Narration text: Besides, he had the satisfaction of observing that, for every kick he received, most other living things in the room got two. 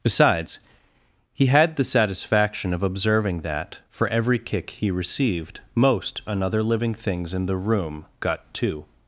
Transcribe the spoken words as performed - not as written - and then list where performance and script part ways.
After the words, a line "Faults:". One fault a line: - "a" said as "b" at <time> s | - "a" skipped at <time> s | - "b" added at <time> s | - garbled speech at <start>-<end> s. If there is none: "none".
Besides, he had the satisfaction of observing that, for every kick he received, most another living things in the room got two.
Faults:
- "other" said as "another" at 6.3 s